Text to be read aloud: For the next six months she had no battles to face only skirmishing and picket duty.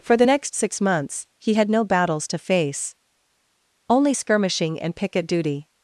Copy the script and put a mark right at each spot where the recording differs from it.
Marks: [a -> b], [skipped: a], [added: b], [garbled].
For the next six months [she -> he] had no battles to face only skirmishing and picket duty.